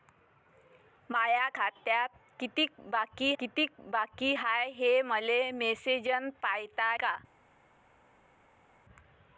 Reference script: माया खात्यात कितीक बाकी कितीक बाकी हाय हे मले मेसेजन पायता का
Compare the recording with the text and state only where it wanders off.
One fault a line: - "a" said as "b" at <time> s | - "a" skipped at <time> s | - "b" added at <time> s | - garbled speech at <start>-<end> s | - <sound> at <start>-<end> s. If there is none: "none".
none